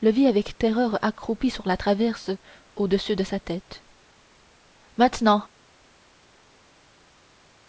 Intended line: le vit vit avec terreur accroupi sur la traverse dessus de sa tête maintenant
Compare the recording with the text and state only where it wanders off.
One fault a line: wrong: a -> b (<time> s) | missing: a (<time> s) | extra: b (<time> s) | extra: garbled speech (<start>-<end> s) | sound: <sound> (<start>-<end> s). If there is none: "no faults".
missing: vit (0.3 s)
extra: au (2.8 s)